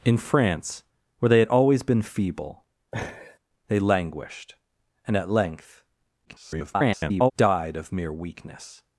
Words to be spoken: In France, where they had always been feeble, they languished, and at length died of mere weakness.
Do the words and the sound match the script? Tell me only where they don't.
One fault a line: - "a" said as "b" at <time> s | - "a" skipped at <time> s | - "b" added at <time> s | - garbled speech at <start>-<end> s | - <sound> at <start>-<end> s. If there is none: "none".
- laugh at 2.9-3.4 s
- garbled speech at 6.3-7.3 s